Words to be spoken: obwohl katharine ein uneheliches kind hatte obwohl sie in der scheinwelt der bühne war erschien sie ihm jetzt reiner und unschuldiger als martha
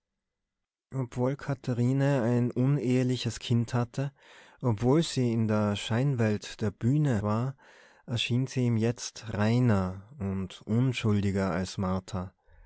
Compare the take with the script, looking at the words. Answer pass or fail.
pass